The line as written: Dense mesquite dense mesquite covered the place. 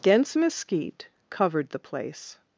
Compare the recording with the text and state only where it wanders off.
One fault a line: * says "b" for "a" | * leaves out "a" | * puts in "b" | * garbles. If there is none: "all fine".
* leaves out "dense mesquite"